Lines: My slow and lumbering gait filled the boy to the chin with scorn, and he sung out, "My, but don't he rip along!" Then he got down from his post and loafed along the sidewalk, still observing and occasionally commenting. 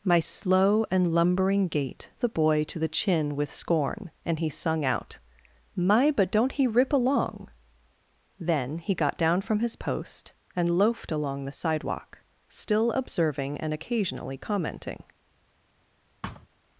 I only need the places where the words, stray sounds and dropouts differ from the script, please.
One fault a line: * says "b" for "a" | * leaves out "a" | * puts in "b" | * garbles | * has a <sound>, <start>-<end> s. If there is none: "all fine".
* leaves out "filled"
* has a thud, 16.2-16.5 s